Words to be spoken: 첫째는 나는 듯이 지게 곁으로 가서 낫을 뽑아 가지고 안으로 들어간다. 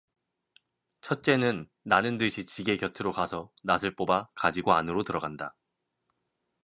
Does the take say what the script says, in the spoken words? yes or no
yes